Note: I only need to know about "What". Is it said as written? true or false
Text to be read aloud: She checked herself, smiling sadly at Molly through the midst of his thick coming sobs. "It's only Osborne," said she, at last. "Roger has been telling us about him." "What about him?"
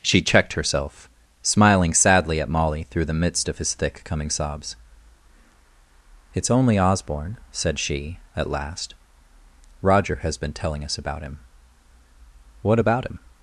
true